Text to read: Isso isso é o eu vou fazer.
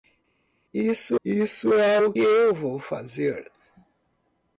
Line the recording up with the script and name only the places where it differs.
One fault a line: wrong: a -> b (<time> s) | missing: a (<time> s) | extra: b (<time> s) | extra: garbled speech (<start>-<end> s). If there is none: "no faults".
no faults